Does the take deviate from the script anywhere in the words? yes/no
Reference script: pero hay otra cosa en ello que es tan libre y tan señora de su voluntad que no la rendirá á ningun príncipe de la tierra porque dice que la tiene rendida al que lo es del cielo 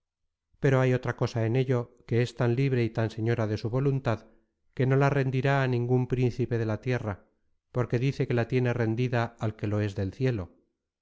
no